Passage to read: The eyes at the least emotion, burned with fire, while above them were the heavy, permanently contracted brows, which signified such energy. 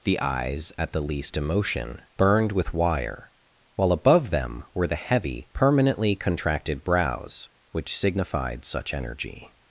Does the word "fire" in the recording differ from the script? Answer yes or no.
yes